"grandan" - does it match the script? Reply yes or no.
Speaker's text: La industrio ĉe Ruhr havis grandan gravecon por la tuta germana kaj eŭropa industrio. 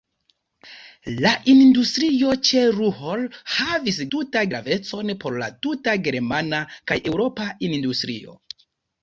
no